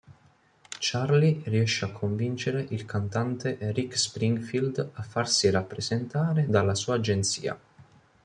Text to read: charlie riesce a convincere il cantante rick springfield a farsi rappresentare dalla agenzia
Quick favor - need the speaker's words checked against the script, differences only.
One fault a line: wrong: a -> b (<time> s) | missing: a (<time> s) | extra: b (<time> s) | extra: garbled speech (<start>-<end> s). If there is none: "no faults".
extra: sua (6.7 s)